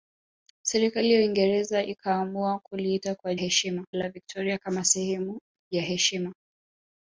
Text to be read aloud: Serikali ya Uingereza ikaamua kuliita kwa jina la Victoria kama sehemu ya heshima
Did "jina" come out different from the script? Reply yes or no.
yes